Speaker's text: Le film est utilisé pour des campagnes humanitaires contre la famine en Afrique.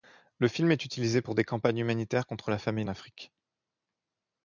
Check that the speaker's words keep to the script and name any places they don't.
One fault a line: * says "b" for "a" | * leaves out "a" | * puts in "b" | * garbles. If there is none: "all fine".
* leaves out "en"